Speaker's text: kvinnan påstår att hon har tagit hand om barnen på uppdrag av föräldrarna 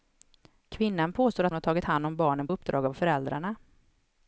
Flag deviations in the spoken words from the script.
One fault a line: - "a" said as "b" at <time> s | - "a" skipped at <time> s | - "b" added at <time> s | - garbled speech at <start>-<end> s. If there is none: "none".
- "hon" skipped at 1.5 s
- "på" skipped at 2.5 s